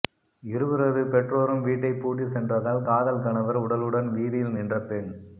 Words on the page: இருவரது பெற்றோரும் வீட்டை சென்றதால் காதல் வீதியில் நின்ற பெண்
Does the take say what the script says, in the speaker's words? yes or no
no